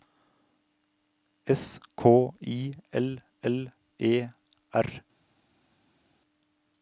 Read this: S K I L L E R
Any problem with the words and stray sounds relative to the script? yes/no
no